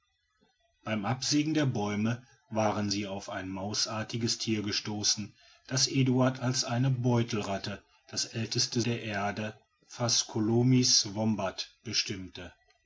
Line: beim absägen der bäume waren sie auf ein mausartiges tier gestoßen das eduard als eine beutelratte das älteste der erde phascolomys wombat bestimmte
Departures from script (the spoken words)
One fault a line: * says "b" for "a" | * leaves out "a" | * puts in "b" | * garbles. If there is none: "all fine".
all fine